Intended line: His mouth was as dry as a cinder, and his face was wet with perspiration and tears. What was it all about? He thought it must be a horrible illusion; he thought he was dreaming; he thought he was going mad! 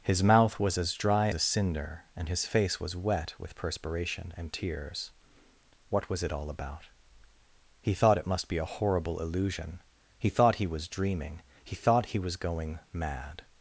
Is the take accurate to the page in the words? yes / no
no